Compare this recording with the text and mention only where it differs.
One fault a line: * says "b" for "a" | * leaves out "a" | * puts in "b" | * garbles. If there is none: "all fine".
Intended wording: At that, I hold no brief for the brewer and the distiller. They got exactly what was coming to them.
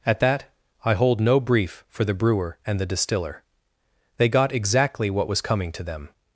all fine